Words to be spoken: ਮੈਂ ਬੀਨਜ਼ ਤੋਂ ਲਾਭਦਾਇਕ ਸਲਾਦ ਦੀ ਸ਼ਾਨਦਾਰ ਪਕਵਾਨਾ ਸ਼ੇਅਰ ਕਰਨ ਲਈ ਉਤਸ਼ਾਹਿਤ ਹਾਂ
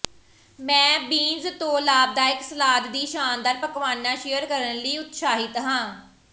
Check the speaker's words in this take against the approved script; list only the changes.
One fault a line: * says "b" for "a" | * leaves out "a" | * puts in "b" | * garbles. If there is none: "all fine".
all fine